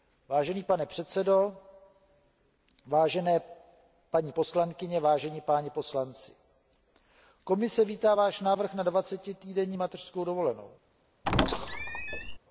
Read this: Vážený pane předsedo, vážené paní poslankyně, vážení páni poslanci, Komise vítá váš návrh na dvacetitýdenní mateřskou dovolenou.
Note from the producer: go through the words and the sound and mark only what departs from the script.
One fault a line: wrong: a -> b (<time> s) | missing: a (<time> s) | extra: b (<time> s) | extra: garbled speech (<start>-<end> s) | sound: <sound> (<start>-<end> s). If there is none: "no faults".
sound: squeak (11.2-12.4 s)